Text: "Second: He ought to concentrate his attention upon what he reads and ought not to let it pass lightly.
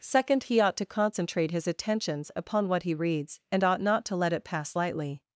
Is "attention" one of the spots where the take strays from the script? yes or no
yes